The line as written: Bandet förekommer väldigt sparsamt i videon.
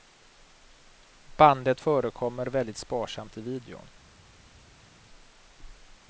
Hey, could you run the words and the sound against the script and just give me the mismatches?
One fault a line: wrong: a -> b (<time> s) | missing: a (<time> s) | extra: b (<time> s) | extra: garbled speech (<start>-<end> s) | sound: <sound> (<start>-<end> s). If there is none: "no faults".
no faults